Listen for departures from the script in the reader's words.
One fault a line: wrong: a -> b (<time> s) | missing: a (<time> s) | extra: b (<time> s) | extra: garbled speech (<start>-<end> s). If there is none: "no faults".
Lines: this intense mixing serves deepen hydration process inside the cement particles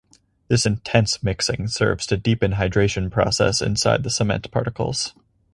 extra: to (2.1 s)